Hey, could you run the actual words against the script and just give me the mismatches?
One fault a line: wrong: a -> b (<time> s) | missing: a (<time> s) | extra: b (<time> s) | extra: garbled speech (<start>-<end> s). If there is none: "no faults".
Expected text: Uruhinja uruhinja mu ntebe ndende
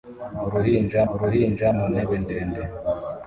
no faults